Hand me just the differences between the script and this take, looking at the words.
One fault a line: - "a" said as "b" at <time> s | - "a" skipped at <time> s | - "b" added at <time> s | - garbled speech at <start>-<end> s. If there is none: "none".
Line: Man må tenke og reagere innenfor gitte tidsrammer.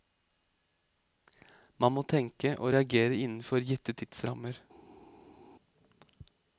none